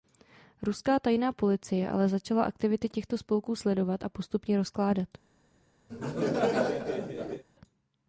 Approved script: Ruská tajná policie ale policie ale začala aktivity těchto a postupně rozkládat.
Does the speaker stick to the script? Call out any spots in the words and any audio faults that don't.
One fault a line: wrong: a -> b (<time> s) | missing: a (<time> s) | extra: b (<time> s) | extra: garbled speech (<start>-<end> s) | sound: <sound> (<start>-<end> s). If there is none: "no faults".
missing: policie ale (2.1 s)
extra: spolků sledovat (3.2 s)
sound: laugh (5.9-7.4 s)